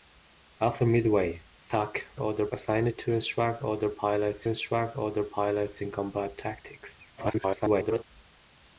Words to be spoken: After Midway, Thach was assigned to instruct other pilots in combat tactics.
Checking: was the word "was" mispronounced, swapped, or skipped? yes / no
yes